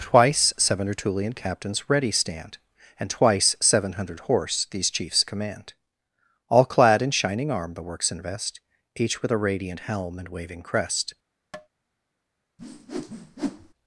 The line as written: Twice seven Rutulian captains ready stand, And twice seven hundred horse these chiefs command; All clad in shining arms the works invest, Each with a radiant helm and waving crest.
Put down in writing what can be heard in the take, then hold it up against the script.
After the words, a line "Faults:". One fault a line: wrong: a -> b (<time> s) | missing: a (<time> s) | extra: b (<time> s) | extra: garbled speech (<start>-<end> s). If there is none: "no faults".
Twice seven Rutulian captains ready stand, And twice seven hundred horse these chiefs command; All clad in shining arm the works invest, Each with a radiant helm and waving crest.
Faults:
wrong: arms -> arm (7.5 s)